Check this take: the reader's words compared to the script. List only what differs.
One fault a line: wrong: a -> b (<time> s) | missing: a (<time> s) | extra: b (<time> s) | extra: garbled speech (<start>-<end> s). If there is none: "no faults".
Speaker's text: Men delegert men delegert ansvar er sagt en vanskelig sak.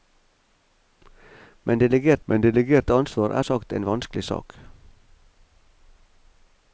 no faults